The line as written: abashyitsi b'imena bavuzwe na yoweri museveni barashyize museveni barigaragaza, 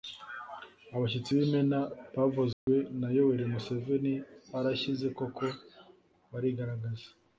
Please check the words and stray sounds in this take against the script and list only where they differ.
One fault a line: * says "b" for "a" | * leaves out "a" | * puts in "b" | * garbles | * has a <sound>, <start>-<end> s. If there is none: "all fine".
* has a dropout, 2.5-2.7 s
* says "koko" for "museveni"